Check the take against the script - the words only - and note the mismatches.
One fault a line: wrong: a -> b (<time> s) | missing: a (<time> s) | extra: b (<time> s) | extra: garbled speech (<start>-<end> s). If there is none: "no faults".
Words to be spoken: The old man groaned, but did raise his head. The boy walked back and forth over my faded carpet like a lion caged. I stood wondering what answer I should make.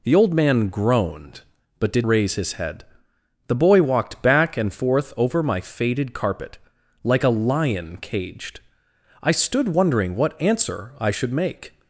no faults